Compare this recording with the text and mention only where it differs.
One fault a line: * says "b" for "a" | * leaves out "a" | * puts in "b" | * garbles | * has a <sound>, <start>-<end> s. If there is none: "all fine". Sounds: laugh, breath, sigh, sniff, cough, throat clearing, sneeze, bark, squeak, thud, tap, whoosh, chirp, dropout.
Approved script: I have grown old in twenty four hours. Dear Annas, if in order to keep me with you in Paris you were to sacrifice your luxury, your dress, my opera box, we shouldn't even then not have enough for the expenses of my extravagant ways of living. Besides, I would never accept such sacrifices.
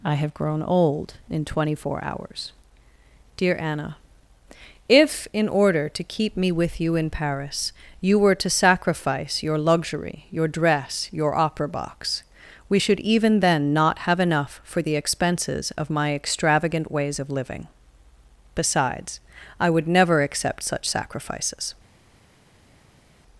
* says "Anna" for "Annas"
* says "your" for "my"
* says "should" for "shouldn't"